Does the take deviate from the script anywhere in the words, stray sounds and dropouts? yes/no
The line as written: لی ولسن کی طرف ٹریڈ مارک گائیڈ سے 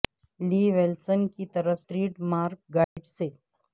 yes